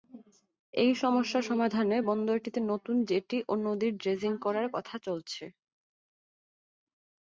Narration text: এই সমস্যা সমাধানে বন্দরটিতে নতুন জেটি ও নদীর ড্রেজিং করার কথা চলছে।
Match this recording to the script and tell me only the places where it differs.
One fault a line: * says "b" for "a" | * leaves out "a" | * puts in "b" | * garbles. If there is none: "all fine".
all fine